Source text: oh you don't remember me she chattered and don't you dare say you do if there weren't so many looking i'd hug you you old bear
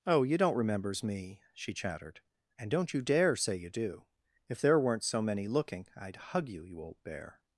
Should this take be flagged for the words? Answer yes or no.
yes